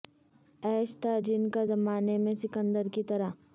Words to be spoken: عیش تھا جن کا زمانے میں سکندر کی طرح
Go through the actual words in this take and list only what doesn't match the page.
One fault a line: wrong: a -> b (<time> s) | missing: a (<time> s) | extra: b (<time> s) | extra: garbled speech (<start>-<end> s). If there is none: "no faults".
no faults